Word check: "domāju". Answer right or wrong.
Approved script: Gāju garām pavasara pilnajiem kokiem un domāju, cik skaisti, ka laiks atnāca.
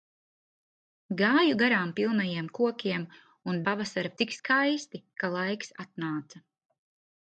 wrong